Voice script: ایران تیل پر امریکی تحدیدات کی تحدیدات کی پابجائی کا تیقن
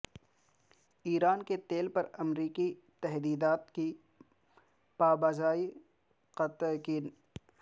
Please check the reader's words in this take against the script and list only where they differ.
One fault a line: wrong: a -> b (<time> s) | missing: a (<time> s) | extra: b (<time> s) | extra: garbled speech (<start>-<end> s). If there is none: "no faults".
extra: کے (1.4 s)
missing: تحدیدات کی (3.9 s)